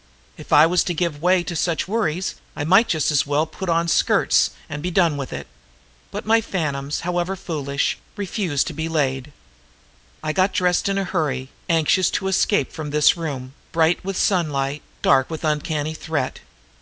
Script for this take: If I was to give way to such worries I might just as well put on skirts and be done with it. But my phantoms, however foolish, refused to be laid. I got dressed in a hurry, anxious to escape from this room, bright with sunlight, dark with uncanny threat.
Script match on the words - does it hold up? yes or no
yes